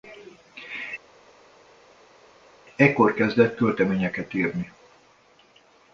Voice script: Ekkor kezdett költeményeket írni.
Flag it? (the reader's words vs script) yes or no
no